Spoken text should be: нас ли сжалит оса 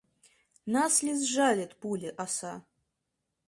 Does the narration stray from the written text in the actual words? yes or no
yes